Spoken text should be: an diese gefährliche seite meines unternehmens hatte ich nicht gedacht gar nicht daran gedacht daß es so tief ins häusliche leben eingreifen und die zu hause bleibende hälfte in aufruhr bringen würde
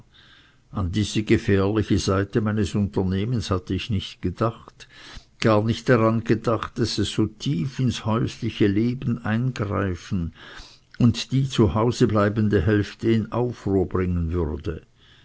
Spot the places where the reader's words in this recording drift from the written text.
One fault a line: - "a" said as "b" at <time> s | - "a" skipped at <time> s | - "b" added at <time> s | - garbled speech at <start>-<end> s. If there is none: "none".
none